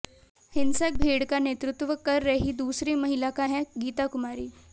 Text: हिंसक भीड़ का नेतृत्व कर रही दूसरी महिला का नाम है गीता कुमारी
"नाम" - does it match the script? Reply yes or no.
no